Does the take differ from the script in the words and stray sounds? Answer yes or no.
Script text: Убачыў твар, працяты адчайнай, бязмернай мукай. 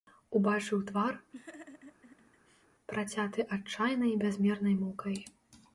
yes